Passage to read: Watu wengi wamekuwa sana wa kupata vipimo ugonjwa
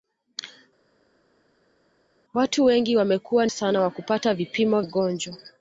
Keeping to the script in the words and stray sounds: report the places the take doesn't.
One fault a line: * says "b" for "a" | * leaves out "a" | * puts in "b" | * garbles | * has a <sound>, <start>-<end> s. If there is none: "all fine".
all fine